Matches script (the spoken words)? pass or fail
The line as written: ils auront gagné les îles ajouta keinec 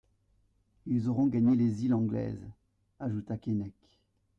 fail